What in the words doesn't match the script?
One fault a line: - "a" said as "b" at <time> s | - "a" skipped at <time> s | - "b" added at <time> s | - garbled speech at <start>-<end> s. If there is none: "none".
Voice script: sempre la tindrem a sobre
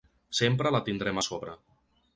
none